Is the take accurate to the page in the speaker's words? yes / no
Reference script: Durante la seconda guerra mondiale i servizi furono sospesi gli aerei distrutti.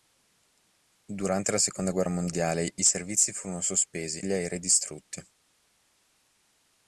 yes